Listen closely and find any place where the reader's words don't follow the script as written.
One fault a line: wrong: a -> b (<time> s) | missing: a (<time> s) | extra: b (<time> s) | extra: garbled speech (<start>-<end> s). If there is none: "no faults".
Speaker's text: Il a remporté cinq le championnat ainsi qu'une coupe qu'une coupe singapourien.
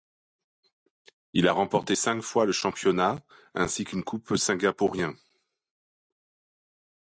extra: fois (2.2 s)
missing: qu'une coupe (4.4 s)